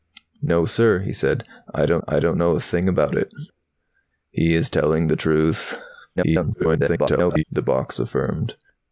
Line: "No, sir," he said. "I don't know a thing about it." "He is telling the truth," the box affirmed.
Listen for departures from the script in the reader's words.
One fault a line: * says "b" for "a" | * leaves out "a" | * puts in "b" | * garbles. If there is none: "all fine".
* puts in "I don't"
* garbles